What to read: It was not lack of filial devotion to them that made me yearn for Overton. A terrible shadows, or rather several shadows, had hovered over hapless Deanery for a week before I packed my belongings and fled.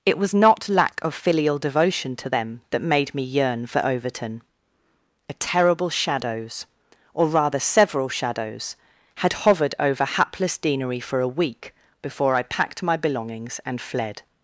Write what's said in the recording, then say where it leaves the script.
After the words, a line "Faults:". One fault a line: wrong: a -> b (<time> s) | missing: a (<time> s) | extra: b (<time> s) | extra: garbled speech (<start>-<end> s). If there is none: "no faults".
It was not lack of filial devotion to them that made me yearn for Overton. A terrible shadows, or rather several shadows, had hovered over hapless Deanery for a week before I packed my belongings and fled.
Faults:
no faults